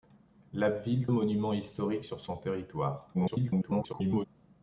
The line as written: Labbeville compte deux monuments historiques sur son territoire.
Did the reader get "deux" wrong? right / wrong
wrong